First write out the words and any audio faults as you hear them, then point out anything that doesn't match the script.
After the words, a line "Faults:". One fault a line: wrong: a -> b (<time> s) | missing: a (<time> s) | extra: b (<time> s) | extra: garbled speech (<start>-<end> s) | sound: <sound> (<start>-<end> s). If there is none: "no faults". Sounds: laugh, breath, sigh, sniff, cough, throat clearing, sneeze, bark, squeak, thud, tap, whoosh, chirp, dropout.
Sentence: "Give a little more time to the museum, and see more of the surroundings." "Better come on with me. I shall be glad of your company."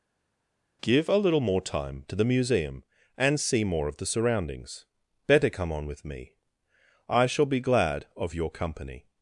"Give a little more time to the museum, and see more of the surroundings." "Better come on with me. I shall be glad of your company."
Faults:
no faults